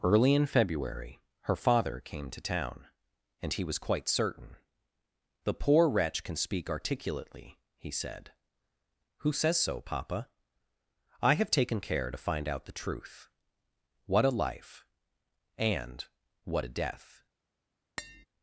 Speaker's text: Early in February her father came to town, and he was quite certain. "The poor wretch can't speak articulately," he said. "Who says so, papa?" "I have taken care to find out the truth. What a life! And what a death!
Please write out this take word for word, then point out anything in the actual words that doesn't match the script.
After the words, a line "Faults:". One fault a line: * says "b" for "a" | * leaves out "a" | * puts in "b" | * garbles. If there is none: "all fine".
Early in February her father came to town, and he was quite certain. "The poor wretch can speak articulately," he said. "Who says so, papa?" "I have taken care to find out the truth. What a life! And what a death!
Faults:
* says "can" for "can't"